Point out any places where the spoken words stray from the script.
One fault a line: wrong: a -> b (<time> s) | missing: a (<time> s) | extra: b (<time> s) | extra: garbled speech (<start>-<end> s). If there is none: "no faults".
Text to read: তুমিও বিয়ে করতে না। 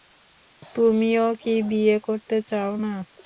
extra: কি (1.4 s)
extra: চাও (2.5 s)